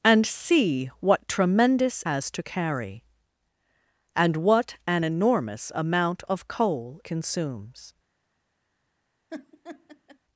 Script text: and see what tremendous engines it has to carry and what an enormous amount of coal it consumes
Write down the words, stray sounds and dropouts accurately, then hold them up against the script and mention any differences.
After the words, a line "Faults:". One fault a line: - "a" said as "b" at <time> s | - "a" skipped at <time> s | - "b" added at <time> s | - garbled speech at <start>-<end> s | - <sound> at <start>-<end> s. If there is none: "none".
and see what tremendous has to carry and what an enormous amount of coal consumes
Faults:
- "engines it" skipped at 2.0 s
- "it" skipped at 7.0 s
- laugh at 9.3-10.2 s